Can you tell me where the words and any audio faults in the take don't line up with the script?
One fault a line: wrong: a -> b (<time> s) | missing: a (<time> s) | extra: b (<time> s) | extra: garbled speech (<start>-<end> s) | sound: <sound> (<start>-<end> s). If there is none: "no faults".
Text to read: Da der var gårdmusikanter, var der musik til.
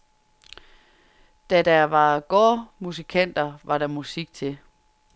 no faults